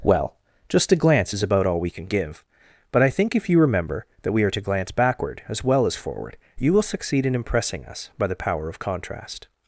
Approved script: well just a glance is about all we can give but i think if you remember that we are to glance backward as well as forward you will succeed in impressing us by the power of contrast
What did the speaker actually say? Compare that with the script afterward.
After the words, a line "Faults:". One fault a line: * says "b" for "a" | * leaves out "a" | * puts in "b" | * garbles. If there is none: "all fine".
well just a glance is about all we can give but i think if you remember that we are to glance backward as well as forward you will succeed in impressing us by the power of contrast
Faults:
all fine